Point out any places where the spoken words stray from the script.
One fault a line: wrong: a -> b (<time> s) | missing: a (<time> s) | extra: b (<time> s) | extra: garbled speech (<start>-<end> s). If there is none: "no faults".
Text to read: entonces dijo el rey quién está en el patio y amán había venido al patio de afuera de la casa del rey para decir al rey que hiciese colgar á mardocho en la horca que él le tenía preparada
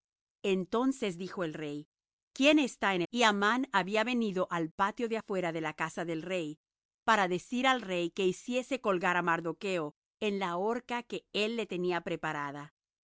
missing: el patio (3.0 s)